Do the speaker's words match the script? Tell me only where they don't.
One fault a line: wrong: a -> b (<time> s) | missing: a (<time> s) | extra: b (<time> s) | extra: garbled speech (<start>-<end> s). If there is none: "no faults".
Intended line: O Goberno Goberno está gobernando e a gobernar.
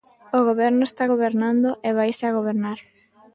missing: Goberno (0.8 s)
extra: vaise (2.0 s)